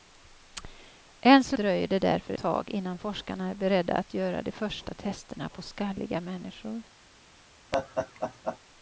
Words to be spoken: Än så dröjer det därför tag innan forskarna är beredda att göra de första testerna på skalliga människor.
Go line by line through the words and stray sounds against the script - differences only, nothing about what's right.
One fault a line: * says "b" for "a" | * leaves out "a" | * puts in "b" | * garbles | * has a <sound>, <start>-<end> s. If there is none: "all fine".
* has a laugh, 7.7-8.6 s